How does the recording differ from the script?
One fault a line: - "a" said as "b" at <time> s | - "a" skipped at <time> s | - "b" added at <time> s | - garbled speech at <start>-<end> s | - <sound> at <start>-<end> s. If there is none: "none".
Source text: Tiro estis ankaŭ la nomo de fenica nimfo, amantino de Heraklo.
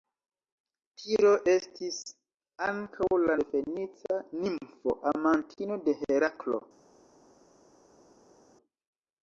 - "nomo" skipped at 3.4 s